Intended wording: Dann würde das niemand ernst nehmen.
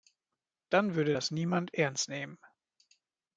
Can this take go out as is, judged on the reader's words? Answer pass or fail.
pass